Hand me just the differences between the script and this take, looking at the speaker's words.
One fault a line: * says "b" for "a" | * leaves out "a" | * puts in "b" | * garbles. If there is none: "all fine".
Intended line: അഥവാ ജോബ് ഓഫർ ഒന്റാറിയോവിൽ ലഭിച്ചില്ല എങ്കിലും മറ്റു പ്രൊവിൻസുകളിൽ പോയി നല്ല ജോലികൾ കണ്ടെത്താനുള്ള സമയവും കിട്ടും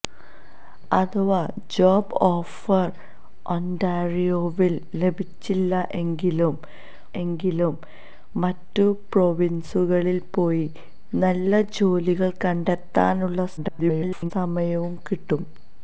* puts in "എങ്കിലും"
* garbles